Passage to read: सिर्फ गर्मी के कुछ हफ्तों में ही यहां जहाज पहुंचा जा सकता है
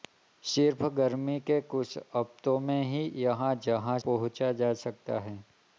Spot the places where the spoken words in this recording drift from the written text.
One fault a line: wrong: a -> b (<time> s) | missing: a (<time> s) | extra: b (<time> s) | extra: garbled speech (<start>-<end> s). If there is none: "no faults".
no faults